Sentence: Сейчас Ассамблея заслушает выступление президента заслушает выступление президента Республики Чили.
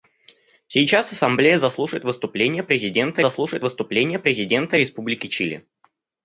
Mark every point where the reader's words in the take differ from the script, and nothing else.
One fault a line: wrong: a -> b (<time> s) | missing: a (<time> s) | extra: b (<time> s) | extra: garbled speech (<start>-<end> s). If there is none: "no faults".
no faults